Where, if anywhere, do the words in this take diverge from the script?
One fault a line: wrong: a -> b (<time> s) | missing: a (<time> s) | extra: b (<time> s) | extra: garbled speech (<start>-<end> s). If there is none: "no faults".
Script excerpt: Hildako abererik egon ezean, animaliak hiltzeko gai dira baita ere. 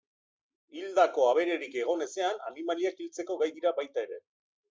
no faults